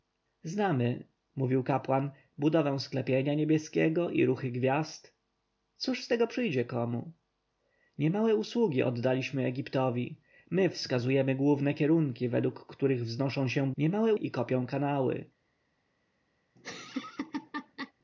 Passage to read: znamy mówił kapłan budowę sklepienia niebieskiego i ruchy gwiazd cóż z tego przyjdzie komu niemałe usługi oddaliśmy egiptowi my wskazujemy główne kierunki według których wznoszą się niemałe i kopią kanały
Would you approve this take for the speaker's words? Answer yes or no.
yes